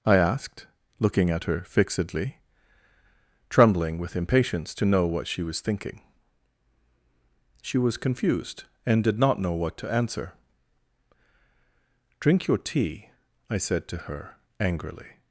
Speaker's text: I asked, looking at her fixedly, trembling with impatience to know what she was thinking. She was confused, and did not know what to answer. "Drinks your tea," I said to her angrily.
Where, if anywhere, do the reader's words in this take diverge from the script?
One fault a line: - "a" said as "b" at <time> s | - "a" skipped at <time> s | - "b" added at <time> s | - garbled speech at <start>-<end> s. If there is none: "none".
- "Drinks" said as "Drink" at 12.2 s